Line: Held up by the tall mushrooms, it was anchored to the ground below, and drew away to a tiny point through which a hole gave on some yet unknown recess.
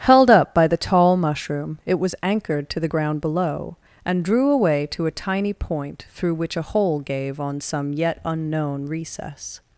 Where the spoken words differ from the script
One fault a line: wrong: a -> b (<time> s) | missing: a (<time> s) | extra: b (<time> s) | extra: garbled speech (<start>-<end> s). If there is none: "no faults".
wrong: mushrooms -> mushroom (1.1 s)